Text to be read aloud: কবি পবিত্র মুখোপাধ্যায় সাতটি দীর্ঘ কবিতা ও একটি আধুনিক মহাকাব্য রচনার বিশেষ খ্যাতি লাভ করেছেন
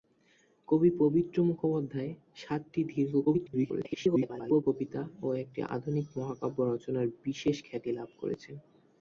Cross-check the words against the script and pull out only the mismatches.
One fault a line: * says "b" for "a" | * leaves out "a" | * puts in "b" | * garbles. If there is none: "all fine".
* garbles